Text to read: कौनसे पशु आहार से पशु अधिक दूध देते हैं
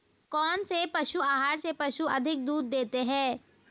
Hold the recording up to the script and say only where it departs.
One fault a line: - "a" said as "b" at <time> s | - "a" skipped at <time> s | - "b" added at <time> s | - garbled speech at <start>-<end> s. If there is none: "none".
none